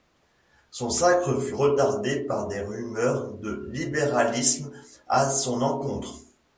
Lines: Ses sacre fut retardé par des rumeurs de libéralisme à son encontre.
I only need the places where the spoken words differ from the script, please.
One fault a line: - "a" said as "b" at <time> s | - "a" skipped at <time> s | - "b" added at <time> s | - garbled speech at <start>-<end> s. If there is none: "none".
- "Ses" said as "Son" at 0.7 s